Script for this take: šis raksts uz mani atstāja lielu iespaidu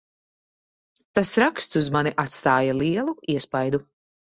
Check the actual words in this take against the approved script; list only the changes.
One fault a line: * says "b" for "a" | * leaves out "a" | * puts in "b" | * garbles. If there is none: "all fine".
* says "tas" for "šis"